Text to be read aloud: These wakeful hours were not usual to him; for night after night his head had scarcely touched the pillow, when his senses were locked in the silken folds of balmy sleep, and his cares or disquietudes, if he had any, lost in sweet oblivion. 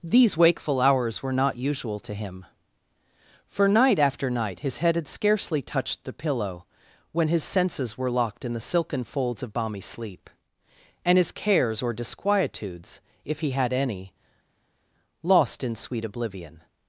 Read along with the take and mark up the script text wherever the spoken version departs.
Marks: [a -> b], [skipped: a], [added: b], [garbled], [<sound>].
These wakeful hours were not usual to him; for night after night his head had scarcely touched the pillow, when his senses were locked in the silken folds of balmy sleep, and his cares or disquietudes, if he had any, lost in sweet oblivion.